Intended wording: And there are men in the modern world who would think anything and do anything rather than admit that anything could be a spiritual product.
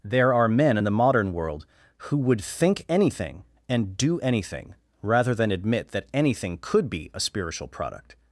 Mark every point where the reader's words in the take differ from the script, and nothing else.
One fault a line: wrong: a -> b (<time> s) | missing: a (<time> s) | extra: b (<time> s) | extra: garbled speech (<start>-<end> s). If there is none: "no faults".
missing: And (0.0 s)